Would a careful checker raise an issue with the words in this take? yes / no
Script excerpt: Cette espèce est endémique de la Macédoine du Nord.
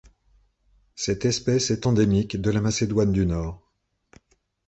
no